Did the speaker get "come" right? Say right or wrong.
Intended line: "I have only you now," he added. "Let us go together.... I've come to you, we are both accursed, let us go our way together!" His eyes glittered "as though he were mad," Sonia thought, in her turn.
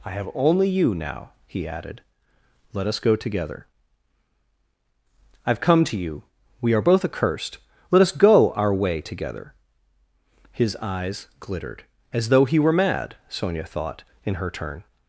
right